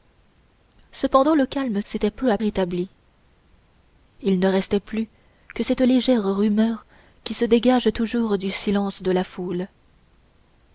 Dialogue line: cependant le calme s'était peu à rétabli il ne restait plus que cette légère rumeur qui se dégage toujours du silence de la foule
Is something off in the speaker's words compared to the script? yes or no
no